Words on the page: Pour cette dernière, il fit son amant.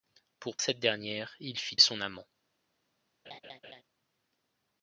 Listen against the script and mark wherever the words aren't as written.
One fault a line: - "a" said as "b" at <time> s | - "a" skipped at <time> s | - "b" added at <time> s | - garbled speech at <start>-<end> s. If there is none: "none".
none